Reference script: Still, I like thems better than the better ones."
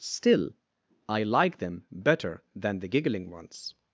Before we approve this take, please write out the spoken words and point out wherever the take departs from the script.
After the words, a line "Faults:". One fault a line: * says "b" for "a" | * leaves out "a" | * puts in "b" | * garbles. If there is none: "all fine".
Still, I like them better than the giggling ones."
Faults:
* says "them" for "thems"
* says "giggling" for "better"